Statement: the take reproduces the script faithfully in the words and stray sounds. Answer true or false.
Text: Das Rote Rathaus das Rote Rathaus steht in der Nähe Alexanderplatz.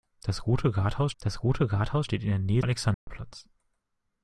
false